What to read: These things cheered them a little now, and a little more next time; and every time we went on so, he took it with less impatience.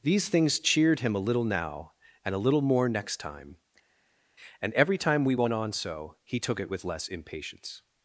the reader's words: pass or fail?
fail